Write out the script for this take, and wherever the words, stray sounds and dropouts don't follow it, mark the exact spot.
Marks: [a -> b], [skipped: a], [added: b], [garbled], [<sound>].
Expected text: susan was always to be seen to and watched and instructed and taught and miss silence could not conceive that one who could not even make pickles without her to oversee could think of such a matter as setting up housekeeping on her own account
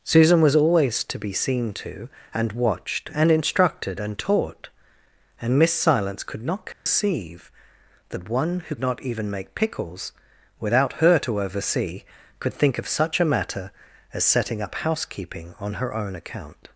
susan was always to be seen to and watched and instructed and taught and miss silence could not conceive [dropout] that one who [skipped: could] not even make pickles without her to oversee could think of such a matter as setting up housekeeping on her own account